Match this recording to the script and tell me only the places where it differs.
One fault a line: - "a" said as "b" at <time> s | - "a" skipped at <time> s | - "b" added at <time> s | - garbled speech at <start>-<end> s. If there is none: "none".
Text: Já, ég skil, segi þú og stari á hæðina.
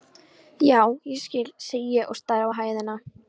- "þú" said as "ég" at 2.0 s